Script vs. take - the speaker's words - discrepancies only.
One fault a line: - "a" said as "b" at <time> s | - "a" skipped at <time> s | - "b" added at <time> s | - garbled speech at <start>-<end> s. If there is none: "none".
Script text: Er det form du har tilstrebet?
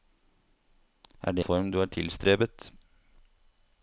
none